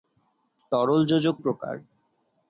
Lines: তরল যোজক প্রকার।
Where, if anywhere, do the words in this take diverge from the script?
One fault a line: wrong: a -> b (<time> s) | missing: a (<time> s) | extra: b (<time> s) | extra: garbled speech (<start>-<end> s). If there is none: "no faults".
no faults